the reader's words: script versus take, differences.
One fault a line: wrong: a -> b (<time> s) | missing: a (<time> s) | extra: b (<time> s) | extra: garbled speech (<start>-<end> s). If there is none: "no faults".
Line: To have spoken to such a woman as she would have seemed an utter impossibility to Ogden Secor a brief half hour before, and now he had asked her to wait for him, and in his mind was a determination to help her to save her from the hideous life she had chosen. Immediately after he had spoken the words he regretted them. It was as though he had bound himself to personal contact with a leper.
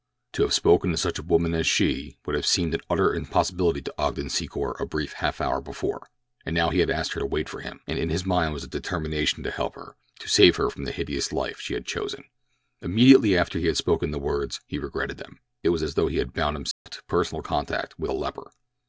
no faults